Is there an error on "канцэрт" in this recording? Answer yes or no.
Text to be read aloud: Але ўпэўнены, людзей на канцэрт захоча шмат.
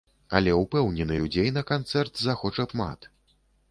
no